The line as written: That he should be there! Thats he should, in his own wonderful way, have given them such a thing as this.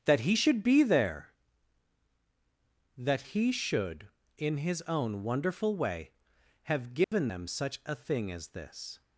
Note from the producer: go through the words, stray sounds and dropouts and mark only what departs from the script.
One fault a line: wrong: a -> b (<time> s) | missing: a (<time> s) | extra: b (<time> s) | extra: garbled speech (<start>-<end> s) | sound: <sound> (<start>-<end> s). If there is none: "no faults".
wrong: Thats -> That (3.0 s)
sound: dropout (7.0-7.1 s)